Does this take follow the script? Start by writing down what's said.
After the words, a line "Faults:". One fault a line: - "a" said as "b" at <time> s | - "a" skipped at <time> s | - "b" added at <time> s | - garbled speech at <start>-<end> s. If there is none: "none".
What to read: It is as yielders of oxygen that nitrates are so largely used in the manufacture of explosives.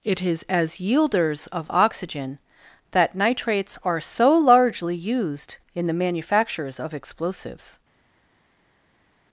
It is as yielders of oxygen that nitrates are so largely used in the manufactures of explosives.
Faults:
- "manufacture" said as "manufactures" at 5.9 s